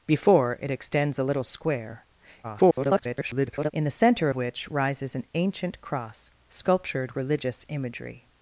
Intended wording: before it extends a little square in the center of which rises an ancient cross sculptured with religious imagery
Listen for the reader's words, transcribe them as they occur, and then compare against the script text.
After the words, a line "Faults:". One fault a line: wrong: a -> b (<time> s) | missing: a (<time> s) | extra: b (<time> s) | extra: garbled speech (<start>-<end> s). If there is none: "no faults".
before it extends a little square [garbled] in the center which rises an ancient cross sculptured religious imagery
Faults:
extra: garbled speech (2.4-3.7 s)
missing: of (4.3 s)
missing: with (7.2 s)